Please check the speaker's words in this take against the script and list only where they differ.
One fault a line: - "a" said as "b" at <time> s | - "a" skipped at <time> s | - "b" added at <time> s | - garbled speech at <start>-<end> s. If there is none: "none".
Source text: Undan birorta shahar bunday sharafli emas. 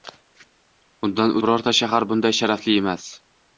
none